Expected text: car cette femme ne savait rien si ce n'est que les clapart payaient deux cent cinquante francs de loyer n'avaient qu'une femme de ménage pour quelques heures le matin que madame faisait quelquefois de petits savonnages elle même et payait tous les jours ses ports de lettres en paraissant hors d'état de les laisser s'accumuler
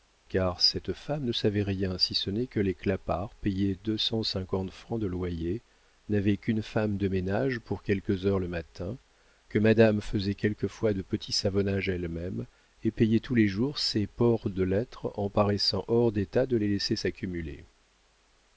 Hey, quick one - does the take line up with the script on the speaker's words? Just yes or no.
yes